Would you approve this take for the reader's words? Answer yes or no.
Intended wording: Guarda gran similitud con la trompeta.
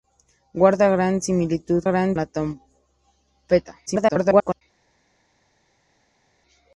no